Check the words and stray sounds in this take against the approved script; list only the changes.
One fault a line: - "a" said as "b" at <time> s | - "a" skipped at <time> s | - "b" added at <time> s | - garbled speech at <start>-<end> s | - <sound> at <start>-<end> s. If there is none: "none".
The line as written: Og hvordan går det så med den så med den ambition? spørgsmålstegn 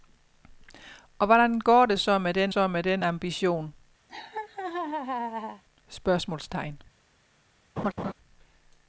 - laugh at 4.1-5.6 s
- laugh at 7.8-8.1 s